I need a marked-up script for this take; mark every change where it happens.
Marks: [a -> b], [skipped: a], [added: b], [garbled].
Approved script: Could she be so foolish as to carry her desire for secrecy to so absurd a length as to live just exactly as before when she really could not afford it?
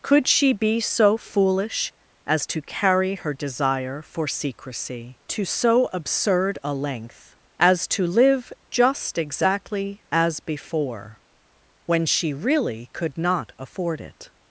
Could she be so foolish as to carry her desire for secrecy to so absurd a length as to live just exactly as before when she really could not afford it?